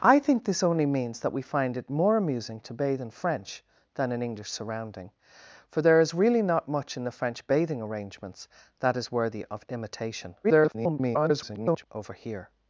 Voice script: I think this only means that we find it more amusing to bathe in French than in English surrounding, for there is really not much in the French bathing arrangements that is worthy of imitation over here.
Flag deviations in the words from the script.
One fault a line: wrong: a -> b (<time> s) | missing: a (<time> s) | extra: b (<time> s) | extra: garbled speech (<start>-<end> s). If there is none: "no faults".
extra: garbled speech (10.4-11.9 s)